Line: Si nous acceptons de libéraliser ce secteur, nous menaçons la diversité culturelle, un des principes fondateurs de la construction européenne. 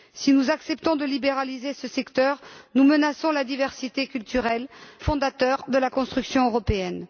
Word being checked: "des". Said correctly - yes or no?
no